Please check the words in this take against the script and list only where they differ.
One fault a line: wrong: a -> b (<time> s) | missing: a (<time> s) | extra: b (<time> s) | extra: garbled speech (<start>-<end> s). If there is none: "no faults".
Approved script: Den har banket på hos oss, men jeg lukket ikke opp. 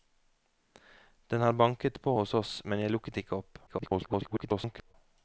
extra: garbled speech (3.7-4.9 s)